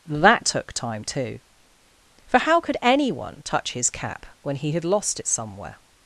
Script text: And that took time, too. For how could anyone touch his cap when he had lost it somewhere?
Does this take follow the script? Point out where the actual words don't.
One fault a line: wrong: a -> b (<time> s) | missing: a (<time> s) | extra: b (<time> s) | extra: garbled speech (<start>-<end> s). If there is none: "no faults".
missing: And (0.1 s)